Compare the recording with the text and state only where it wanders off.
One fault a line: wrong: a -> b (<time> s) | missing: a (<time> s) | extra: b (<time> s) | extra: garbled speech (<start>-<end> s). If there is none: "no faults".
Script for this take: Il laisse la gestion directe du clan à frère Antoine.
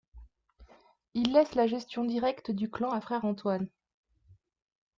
no faults